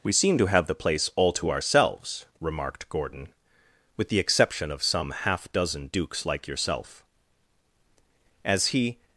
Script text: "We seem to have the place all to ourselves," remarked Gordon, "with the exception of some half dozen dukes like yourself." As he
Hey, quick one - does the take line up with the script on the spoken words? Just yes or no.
yes